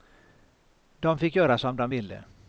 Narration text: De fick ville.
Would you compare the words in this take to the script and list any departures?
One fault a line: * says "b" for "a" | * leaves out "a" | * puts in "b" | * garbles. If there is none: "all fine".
* puts in "göra som de"